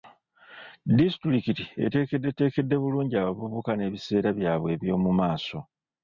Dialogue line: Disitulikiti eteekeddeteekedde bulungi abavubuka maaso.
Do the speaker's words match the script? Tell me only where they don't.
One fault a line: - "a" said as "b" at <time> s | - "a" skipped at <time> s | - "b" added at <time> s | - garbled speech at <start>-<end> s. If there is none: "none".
- "n'ebiseera byabwe eby'omu" added at 3.8 s